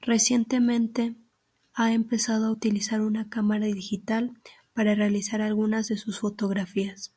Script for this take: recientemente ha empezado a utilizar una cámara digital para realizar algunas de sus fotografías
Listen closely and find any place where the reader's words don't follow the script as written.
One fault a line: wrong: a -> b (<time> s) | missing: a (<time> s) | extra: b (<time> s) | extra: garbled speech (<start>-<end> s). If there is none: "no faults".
no faults